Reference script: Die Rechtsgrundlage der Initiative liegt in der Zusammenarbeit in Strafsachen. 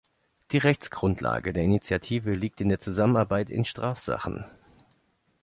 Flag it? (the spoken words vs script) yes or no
no